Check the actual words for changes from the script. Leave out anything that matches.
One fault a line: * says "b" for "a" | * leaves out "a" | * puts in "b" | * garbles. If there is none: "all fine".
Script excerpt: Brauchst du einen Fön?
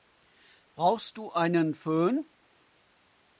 all fine